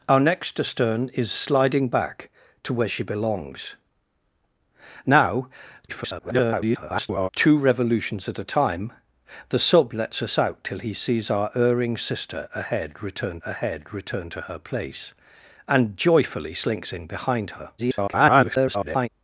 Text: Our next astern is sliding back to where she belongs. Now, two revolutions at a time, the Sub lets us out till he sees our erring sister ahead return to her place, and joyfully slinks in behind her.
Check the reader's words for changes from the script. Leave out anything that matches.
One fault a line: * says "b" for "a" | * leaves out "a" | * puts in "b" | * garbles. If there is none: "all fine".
* garbles
* puts in "ahead return"
* garbles